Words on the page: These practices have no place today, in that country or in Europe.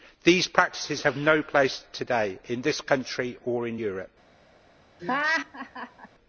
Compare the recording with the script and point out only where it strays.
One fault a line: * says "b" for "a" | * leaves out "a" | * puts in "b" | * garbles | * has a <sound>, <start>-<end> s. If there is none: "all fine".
* says "this" for "that"
* has a laugh, 5.0-6.1 s